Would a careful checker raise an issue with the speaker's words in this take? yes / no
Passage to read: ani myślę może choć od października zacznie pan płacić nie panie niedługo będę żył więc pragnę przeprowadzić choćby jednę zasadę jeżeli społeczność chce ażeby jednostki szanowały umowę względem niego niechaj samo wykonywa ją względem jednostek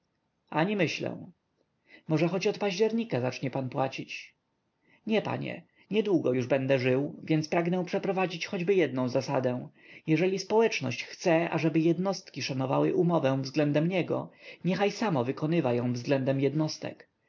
yes